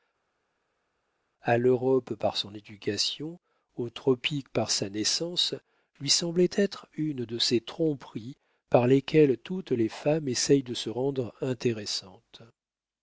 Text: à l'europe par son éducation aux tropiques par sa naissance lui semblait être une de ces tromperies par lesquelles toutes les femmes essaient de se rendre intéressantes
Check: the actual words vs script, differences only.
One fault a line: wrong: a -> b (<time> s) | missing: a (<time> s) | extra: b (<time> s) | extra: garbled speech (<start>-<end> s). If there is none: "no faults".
no faults